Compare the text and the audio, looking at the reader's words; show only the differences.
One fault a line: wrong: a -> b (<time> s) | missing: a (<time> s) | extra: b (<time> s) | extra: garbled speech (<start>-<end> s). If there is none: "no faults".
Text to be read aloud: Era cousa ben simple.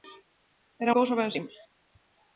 no faults